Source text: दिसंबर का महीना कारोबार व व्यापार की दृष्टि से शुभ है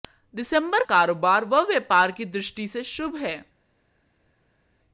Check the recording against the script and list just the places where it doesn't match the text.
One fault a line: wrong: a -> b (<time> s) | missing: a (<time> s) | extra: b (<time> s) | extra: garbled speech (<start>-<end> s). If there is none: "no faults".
missing: का महीना (0.8 s)